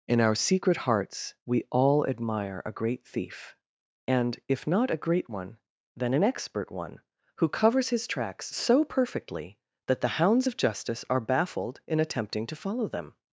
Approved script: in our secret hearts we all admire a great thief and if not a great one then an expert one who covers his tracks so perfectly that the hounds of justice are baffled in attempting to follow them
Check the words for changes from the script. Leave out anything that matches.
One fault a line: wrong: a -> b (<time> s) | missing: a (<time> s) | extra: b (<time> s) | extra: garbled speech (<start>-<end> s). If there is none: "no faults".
no faults